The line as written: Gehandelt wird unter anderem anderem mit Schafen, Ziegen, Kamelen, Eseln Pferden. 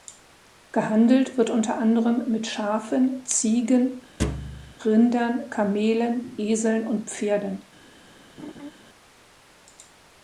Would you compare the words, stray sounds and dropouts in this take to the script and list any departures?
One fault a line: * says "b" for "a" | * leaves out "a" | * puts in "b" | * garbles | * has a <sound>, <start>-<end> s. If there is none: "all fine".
* leaves out "anderem"
* has a thud, 4.2-4.7 s
* puts in "Rindern"
* puts in "und"
* has a laugh, 8.4-8.7 s